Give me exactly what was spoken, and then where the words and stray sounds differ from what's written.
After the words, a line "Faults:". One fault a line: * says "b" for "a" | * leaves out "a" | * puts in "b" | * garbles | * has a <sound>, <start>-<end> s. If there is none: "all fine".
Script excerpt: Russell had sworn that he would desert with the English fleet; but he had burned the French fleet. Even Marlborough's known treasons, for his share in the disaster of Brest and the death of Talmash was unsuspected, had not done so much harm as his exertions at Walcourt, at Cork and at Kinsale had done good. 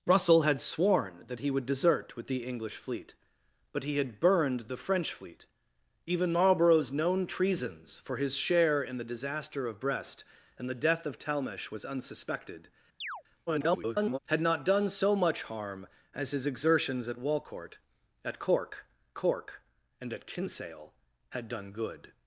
Russell had sworn that he would desert with the English fleet; but he had burned the French fleet. Even Marlborough's known treasons, for his share in the disaster of Brest and the death of Talmash was unsuspected, [garbled] had not done so much harm as his exertions at Walcourt, at Cork Cork and at Kinsale had done good.
Faults:
* has a chirp, 13.0-13.2 s
* garbles
* puts in "Cork"